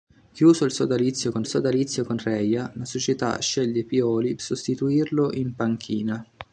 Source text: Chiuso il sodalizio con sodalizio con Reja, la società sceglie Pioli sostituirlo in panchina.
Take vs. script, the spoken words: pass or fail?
pass